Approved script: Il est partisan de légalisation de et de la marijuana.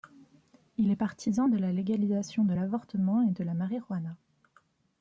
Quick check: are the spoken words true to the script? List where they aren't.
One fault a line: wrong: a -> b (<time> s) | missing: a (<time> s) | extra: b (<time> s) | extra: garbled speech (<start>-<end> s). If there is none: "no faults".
extra: la (1.6 s)
extra: l'avortement (2.5 s)